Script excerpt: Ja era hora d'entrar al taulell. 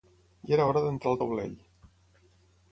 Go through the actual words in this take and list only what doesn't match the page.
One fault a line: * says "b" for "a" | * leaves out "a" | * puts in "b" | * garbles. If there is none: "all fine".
all fine